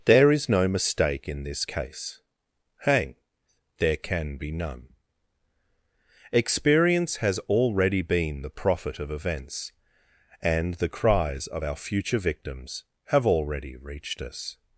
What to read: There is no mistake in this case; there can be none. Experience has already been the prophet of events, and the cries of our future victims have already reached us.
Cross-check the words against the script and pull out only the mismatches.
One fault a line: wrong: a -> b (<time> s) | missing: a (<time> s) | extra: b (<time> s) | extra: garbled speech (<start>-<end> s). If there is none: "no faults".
extra: hang (2.8 s)